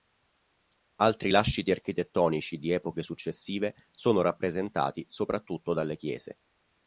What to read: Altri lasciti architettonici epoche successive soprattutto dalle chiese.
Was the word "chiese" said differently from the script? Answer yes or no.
no